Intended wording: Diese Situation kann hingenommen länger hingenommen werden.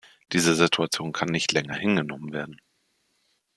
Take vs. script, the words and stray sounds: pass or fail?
fail